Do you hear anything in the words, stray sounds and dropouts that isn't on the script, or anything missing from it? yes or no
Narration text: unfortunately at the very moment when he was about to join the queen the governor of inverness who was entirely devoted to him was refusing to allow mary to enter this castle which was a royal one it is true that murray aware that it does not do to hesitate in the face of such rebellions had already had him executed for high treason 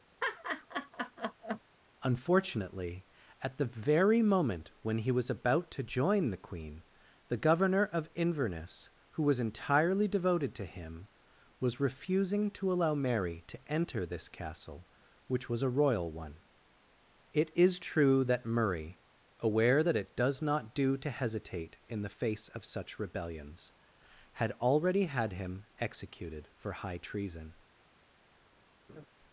yes